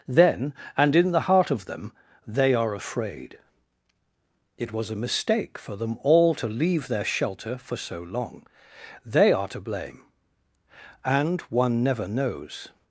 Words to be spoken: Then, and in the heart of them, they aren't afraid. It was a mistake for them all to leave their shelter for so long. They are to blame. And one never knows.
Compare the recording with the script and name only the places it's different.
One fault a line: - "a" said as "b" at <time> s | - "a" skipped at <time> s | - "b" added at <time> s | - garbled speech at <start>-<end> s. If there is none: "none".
- "aren't" said as "are" at 2.5 s